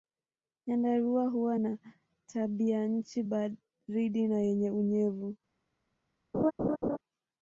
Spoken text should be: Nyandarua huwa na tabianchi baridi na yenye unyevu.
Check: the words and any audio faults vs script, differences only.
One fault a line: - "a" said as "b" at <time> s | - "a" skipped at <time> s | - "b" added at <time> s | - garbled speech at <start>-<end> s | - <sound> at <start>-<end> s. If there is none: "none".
- laugh at 6.3-7.0 s